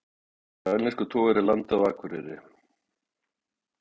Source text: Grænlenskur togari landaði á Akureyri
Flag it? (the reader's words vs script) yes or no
no